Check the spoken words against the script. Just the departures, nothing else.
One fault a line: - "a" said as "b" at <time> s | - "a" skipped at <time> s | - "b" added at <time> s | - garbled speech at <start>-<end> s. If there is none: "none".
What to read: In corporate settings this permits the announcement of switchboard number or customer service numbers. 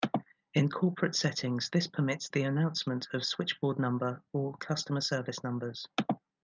none